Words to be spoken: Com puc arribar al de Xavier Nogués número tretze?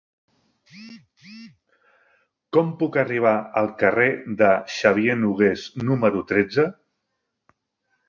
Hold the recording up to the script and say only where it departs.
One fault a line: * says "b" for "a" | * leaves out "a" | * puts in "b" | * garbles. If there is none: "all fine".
* puts in "carrer"